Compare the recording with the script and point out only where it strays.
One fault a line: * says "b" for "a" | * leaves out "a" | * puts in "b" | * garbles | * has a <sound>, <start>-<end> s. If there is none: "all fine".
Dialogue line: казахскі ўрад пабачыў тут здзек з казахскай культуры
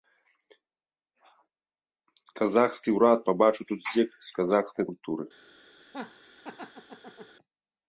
* has a laugh, 5.8-7.4 s